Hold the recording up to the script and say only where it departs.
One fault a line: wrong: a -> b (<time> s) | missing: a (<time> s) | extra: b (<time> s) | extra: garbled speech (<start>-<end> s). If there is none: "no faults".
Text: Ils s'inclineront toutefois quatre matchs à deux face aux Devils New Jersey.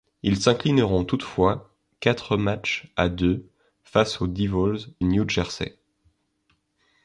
no faults